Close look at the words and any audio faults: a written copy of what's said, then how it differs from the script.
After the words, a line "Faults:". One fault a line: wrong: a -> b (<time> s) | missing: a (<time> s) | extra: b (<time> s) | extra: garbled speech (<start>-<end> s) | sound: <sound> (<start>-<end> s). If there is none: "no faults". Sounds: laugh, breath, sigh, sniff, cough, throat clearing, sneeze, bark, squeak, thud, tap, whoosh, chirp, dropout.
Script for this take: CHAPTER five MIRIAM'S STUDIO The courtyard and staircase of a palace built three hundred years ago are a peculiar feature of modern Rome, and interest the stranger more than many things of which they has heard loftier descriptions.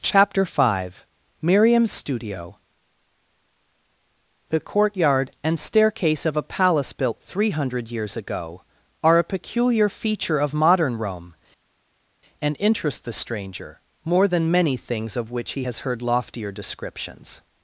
CHAPTER five MIRIAM'S STUDIO The courtyard and staircase of a palace built three hundred years ago are a peculiar feature of modern Rome, and interest the stranger more than many things of which he has heard loftier descriptions.
Faults:
wrong: they -> he (15.5 s)